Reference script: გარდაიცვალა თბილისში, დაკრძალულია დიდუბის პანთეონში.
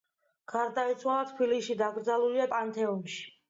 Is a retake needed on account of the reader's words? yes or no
yes